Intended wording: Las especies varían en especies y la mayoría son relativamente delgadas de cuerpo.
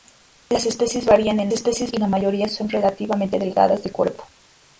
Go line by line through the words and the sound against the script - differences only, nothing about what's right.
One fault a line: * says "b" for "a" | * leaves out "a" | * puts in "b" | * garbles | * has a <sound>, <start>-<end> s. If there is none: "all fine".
all fine